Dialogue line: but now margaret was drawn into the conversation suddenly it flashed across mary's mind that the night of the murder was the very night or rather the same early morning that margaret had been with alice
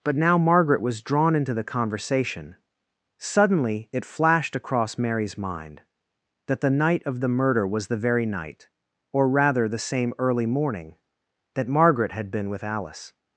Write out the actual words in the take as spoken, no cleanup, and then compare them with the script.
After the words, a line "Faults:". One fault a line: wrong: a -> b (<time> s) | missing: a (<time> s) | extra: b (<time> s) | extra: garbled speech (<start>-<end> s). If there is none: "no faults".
but now margaret was drawn into the conversation suddenly it flashed across mary's mind that the night of the murder was the very night or rather the same early morning that margaret had been with alice
Faults:
no faults